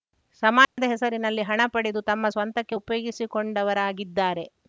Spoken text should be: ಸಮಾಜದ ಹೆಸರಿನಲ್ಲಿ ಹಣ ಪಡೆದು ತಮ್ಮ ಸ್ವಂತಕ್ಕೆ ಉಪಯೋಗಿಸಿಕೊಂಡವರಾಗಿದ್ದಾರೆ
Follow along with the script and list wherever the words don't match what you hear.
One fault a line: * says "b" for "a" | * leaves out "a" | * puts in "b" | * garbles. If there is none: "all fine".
all fine